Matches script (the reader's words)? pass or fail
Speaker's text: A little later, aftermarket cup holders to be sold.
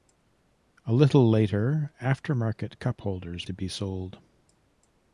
pass